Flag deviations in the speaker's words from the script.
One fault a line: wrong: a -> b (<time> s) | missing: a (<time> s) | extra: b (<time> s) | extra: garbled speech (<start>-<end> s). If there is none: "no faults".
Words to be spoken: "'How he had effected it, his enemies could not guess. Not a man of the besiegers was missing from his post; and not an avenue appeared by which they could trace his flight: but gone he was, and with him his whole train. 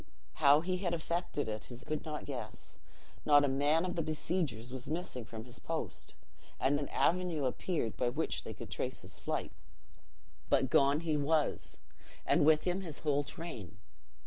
missing: enemies (1.8 s)
missing: not (6.8 s)